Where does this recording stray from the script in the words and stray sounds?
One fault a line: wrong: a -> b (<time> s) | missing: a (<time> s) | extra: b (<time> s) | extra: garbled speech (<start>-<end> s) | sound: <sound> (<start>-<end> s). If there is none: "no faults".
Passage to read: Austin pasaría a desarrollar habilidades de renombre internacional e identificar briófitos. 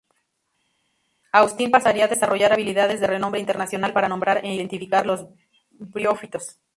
extra: para nombrar (3.9 s)
extra: los (5.0 s)